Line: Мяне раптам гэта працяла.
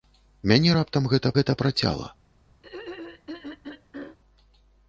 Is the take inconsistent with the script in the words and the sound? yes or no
yes